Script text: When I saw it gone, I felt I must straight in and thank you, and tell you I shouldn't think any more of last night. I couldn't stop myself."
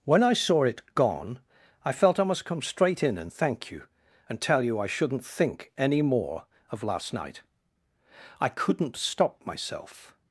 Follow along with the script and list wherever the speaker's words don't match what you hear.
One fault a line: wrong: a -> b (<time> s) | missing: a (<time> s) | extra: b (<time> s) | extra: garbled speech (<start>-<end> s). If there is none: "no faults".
extra: come (2.4 s)